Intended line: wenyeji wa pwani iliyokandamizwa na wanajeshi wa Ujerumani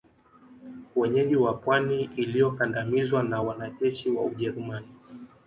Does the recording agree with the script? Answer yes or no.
yes